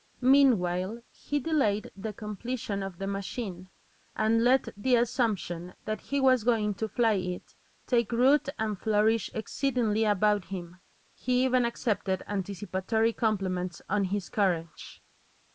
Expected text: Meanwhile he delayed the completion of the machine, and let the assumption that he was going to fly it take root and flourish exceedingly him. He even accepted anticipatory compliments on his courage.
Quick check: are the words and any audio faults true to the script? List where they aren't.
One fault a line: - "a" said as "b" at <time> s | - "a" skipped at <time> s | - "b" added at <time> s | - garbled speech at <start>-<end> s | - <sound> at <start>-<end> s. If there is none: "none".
- "about" added at 10.1 s